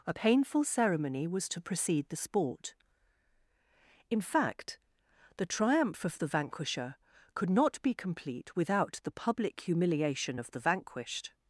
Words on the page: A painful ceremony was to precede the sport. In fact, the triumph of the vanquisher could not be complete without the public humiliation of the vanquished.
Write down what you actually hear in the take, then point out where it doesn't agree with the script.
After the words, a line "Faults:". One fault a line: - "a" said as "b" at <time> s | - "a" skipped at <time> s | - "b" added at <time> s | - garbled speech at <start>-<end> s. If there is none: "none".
A painful ceremony was to precede the sport. In fact, the triumph of the vanquisher could not be complete without the public humiliation of the vanquished.
Faults:
none